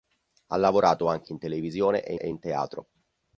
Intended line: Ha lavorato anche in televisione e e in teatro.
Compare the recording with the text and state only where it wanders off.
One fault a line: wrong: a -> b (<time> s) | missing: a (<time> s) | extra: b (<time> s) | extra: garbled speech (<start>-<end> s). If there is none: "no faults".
no faults